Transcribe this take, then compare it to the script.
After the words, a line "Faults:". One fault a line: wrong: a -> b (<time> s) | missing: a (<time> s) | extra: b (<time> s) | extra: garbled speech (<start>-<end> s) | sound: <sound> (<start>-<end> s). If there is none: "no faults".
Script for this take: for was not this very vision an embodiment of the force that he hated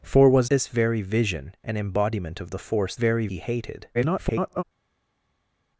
for was this very vision an embodiment of the force very he hated [garbled]
Faults:
missing: not (0.5 s)
wrong: that -> very (2.9 s)
extra: garbled speech (3.9-4.6 s)